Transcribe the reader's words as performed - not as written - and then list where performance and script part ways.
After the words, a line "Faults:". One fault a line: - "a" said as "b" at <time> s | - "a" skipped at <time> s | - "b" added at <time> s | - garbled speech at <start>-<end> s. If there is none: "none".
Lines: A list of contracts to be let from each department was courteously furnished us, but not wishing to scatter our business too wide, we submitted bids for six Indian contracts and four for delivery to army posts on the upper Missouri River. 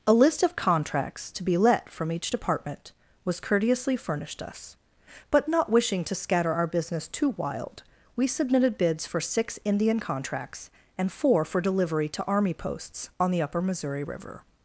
A list of contracts to be let from each department was courteously furnished us, but not wishing to scatter our business too wild, we submitted bids for six Indian contracts and four for delivery to army posts on the upper Missouri River.
Faults:
- "wide" said as "wild" at 7.3 s